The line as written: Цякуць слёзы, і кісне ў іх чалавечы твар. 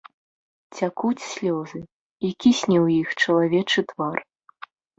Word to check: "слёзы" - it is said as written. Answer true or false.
true